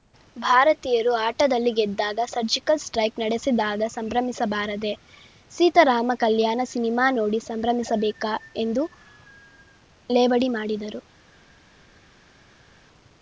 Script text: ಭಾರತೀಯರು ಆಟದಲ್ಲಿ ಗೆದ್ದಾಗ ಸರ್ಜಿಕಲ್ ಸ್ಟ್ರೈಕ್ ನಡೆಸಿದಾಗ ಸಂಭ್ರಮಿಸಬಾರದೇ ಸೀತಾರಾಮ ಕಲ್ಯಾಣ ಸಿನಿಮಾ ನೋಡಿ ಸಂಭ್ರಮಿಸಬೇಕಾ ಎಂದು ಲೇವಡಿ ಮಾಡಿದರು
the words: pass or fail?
pass